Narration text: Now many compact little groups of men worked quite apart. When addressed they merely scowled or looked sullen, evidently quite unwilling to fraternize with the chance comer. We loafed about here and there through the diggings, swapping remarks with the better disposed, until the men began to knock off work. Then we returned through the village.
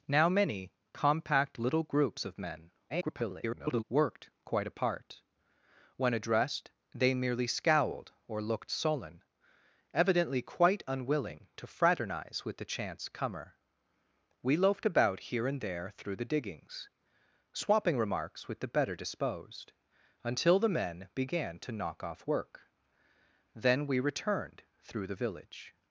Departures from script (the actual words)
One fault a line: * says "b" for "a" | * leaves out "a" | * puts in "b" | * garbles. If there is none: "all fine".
* garbles